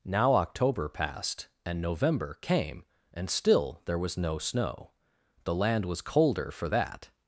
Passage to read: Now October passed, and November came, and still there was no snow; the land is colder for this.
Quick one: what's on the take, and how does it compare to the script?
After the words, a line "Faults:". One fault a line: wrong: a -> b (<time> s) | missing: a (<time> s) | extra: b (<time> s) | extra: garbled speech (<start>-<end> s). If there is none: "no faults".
Now October passed, and November came, and still there was no snow; the land was colder for that.
Faults:
wrong: is -> was (5.8 s)
wrong: this -> that (6.7 s)